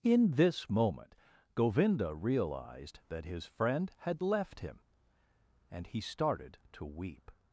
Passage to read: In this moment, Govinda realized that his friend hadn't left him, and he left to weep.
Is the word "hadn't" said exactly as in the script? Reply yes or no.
no